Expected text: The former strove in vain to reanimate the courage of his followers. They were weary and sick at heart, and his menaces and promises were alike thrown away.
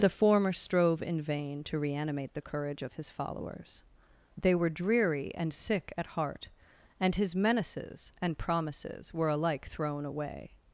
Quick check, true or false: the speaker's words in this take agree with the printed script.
false